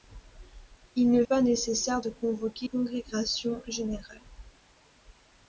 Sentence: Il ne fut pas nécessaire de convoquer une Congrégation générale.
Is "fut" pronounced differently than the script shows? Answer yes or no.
yes